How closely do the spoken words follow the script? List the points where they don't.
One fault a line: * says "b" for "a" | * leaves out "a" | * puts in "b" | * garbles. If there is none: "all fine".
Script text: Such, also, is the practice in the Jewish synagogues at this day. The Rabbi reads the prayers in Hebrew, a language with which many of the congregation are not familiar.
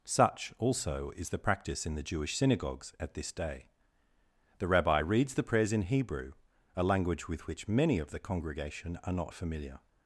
all fine